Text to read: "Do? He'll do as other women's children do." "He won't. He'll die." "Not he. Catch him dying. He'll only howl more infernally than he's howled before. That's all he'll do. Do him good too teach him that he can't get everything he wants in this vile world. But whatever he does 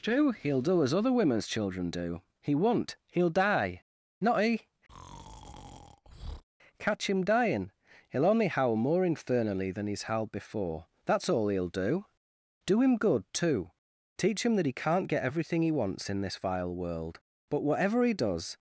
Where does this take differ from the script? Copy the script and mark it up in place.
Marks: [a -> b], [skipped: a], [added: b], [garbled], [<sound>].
"Do? He'll do as other women's children do." "He won't. He'll die." "Not he. [breath] Catch him dying. He'll only howl more infernally than he's howled before. That's all he'll do. Do him good too teach him that he can't get everything he wants in this vile world. But whatever he does